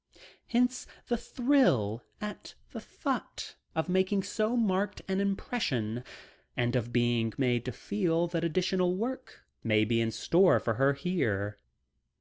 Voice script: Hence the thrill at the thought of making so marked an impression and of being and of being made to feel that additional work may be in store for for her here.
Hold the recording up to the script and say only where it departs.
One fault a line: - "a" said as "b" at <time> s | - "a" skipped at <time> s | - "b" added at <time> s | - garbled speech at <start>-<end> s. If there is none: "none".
- "and of being" skipped at 7.3 s
- "for" skipped at 10.8 s